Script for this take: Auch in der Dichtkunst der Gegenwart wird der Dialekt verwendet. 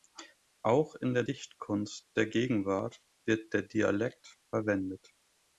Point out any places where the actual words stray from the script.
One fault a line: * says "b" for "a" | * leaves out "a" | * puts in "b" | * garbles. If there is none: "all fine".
all fine